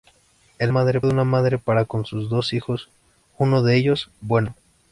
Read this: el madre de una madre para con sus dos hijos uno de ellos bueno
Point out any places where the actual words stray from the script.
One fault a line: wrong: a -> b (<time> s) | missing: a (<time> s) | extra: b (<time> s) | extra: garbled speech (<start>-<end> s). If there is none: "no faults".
no faults